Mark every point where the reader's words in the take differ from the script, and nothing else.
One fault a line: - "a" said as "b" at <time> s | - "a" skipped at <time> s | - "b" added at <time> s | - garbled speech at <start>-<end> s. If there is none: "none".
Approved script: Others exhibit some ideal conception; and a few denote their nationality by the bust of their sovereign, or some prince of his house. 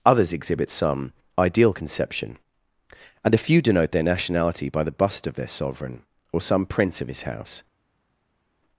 none